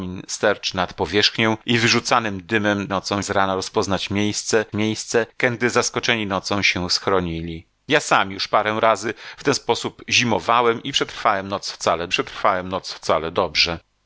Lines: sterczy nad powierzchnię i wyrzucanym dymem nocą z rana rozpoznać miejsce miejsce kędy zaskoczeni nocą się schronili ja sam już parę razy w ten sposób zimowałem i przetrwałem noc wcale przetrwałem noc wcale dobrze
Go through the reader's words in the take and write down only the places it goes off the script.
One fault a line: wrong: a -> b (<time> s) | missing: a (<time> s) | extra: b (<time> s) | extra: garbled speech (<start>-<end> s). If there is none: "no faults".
no faults